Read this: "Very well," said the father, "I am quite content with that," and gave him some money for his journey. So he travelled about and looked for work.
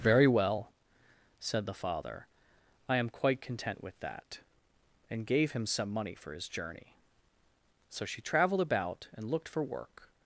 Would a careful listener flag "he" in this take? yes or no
yes